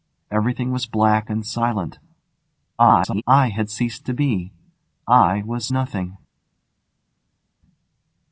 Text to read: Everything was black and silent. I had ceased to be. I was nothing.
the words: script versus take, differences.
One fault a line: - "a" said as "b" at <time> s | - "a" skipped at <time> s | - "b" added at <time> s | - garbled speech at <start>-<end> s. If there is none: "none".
- garbled speech at 2.8-3.2 s